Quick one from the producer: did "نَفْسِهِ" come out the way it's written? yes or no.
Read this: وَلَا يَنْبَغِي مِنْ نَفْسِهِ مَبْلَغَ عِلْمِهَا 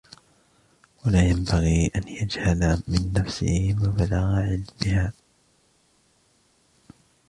yes